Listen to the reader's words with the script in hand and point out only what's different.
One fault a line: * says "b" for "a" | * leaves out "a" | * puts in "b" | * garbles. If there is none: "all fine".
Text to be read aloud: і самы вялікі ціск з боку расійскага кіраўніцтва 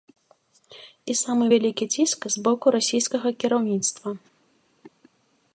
all fine